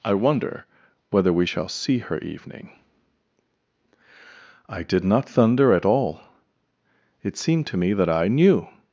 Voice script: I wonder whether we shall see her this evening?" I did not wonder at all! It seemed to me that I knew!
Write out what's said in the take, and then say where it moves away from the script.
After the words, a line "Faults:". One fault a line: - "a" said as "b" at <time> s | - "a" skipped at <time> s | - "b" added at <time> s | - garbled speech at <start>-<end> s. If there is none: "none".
I wonder whether we shall see her evening?" I did not thunder at all! It seemed to me that I knew!
Faults:
- "this" skipped at 2.2 s
- "wonder" said as "thunder" at 5.3 s